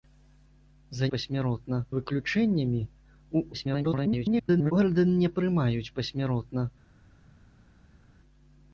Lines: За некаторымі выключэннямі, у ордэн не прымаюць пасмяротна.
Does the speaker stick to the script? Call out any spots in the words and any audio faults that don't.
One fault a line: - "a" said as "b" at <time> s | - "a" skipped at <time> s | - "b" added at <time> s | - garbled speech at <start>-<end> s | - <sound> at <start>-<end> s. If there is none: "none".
- "некаторымі" said as "пасмяротна" at 1.1 s
- garbled speech at 3.5-4.7 s